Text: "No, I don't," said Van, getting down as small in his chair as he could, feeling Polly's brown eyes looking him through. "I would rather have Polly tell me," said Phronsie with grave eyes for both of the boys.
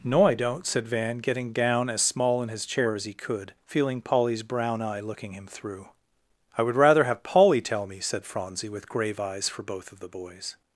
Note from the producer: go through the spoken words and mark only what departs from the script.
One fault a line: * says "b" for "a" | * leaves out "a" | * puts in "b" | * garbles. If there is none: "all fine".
* says "eye" for "eyes"